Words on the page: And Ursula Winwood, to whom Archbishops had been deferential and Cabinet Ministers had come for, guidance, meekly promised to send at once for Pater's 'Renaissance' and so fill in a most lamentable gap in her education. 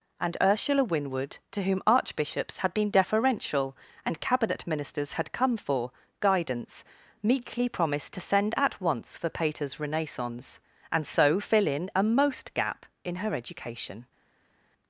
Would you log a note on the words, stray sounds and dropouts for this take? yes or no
yes